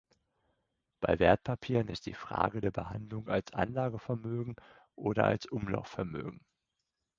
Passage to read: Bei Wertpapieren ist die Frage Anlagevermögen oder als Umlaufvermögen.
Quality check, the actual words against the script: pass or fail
fail